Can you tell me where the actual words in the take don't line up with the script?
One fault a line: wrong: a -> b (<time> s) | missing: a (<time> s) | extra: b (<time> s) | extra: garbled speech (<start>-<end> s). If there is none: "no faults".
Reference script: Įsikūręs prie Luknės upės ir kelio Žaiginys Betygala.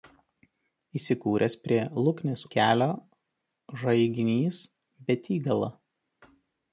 missing: upės ir (2.4 s)